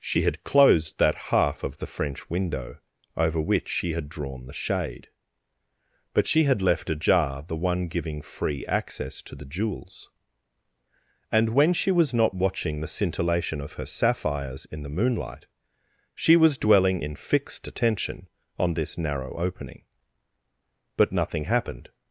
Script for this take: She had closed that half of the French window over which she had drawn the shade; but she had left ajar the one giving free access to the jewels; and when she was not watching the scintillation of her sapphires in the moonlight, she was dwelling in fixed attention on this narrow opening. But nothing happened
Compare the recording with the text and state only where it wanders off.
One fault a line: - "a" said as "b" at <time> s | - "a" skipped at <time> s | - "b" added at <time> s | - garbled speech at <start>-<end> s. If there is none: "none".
none